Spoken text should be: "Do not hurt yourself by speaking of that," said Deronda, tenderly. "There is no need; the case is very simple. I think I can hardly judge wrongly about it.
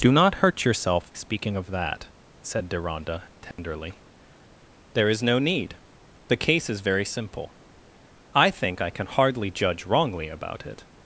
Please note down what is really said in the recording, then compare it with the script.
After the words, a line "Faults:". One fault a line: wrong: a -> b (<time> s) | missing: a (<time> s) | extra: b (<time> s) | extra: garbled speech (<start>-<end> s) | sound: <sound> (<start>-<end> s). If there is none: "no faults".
"Do not hurt yourself speaking of that," said Deronda, tenderly. "There is no need; the case is very simple. I think I can hardly judge wrongly about it.
Faults:
missing: by (1.1 s)
sound: dropout (3.5-3.6 s)